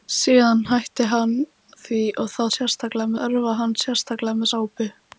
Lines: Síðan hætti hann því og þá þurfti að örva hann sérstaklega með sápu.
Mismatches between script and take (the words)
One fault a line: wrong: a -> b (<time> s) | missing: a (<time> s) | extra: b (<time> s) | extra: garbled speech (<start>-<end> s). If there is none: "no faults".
wrong: þurfti -> sérstaklega (2.6 s)